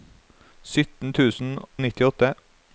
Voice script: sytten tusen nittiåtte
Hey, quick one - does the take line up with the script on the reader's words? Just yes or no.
yes